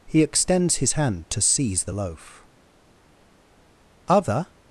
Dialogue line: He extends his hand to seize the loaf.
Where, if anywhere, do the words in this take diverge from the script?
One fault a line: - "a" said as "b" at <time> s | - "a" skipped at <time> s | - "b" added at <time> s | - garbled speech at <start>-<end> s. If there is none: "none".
- "Other" added at 4.1 s